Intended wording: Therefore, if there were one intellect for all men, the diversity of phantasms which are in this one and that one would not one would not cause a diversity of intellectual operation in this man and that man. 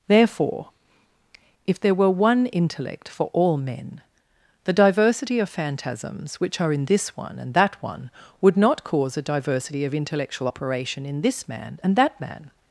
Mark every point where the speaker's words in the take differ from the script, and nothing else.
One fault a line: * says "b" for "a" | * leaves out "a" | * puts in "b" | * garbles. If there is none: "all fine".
* leaves out "one would not"